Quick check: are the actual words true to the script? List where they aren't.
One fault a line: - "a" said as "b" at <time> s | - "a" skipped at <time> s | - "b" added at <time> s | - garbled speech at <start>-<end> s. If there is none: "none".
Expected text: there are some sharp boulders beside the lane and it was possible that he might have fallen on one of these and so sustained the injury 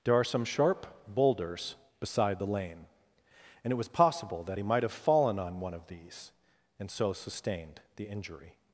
none